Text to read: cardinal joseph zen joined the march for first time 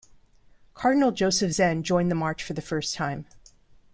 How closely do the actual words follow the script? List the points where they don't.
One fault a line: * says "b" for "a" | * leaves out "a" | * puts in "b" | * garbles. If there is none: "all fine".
* puts in "the"